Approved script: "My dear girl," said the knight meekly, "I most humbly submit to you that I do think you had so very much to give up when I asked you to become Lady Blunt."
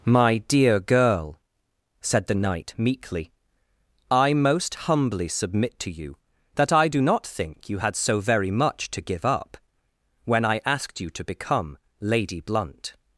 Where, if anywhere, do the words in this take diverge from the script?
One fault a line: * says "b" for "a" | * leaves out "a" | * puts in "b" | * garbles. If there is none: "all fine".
* puts in "not"